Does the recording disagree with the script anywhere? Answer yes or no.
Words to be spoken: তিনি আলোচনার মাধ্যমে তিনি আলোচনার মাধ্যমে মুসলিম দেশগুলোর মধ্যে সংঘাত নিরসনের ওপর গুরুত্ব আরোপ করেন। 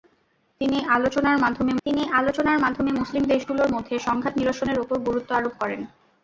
no